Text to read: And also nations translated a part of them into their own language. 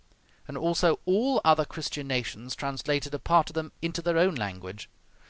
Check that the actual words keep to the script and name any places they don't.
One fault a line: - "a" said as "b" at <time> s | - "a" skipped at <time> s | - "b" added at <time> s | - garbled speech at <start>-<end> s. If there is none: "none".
- "all other Christian" added at 1.1 s